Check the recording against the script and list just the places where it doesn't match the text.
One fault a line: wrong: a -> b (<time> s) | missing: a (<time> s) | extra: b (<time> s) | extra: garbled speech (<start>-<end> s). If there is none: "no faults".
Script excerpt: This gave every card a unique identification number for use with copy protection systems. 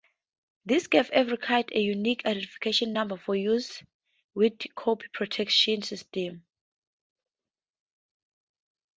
no faults